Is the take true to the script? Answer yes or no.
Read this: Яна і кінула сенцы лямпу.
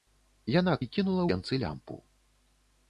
yes